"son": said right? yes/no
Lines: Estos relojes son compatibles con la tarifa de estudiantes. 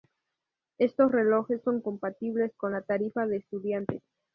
yes